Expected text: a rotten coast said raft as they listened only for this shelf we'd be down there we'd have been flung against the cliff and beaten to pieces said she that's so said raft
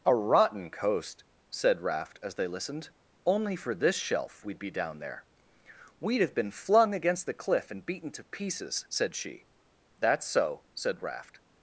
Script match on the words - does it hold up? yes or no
yes